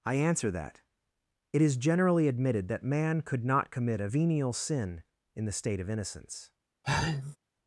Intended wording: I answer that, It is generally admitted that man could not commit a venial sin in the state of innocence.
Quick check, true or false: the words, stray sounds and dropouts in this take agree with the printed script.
false